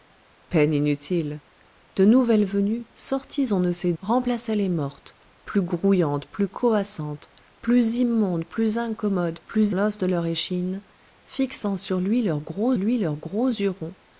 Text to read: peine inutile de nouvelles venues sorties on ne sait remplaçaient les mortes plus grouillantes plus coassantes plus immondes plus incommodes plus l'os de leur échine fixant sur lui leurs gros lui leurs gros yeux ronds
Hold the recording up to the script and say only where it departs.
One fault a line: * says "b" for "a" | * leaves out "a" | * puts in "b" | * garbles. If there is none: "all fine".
all fine